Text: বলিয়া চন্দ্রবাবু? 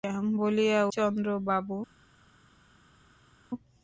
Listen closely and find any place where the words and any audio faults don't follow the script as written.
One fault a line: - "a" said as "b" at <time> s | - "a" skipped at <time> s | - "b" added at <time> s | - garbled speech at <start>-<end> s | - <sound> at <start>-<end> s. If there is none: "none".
none